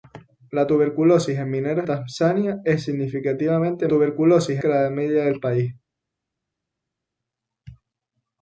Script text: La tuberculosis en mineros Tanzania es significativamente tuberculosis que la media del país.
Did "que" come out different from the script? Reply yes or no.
no